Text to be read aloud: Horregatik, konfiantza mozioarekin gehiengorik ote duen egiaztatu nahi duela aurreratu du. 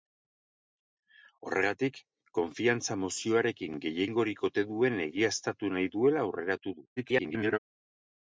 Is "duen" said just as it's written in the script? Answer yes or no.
yes